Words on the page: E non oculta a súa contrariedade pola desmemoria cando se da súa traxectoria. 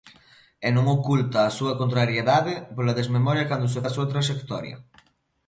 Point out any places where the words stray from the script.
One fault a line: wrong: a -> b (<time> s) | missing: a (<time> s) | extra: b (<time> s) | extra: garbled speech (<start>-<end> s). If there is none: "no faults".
no faults